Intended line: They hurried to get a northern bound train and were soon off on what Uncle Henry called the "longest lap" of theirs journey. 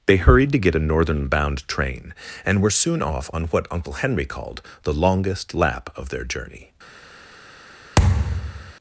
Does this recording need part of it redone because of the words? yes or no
yes